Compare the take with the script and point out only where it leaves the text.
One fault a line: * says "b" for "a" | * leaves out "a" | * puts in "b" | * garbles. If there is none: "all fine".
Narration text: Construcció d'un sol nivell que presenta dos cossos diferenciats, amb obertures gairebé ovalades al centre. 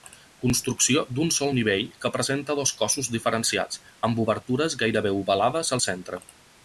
all fine